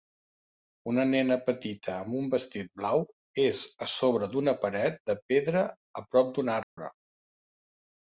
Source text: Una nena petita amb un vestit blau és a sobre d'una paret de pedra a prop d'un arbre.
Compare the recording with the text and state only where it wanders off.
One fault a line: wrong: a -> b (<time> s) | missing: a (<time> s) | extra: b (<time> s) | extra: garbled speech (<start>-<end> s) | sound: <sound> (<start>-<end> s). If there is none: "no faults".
sound: dropout (6.6-6.8 s)